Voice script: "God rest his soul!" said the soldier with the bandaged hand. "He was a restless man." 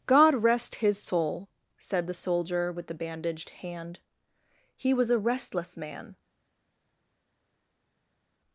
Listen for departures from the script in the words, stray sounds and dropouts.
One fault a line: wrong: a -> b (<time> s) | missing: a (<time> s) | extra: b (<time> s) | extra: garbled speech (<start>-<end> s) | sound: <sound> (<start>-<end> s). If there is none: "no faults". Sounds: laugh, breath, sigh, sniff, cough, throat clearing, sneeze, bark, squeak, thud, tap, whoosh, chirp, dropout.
no faults